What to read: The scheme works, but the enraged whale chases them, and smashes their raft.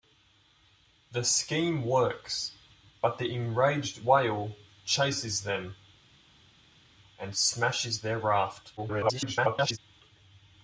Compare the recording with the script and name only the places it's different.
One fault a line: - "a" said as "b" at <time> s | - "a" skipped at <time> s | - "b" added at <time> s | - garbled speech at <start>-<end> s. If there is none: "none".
- garbled speech at 8.8-9.8 s